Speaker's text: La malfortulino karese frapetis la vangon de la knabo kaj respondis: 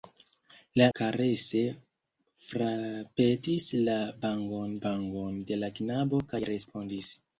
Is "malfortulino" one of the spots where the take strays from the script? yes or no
yes